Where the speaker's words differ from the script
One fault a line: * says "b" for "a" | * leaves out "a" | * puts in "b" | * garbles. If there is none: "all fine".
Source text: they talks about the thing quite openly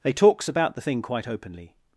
all fine